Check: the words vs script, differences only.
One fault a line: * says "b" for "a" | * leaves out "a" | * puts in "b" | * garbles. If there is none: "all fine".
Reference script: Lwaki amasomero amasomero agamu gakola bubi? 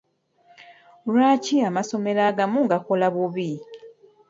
* leaves out "amasomero"